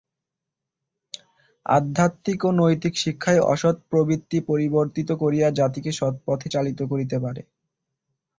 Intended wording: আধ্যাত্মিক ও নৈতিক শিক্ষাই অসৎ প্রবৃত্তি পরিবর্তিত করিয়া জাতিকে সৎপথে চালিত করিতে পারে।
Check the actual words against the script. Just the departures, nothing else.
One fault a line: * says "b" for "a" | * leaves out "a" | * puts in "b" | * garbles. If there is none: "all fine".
all fine